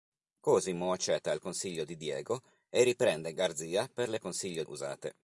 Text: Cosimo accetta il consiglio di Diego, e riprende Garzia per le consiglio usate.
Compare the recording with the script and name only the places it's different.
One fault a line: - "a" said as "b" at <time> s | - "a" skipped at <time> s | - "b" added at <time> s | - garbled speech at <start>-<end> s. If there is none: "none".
none